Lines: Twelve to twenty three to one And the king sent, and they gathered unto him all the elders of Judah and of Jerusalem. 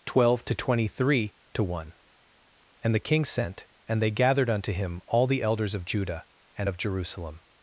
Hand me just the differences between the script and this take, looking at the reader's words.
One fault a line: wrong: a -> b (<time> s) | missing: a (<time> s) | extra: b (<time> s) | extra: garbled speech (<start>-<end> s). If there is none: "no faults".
no faults